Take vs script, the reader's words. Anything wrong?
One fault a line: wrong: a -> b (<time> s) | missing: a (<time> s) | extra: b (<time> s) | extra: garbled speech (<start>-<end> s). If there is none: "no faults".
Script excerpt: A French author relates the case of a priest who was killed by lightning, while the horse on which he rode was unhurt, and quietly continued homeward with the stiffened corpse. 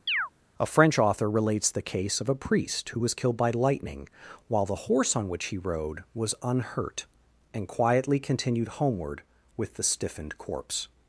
no faults